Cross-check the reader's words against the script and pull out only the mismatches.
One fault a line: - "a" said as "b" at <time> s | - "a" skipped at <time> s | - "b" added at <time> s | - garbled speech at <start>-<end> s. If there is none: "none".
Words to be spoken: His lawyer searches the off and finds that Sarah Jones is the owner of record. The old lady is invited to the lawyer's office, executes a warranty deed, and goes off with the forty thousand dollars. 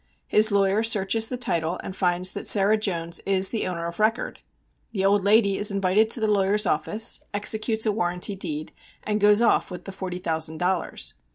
- "off" said as "title" at 1.4 s